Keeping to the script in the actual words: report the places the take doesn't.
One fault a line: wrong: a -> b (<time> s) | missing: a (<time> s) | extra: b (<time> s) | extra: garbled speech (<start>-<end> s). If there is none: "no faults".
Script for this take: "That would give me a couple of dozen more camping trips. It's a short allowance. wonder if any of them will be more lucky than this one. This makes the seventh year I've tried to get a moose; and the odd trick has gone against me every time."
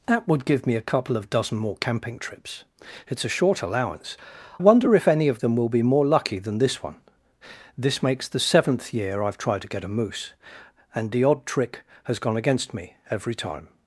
no faults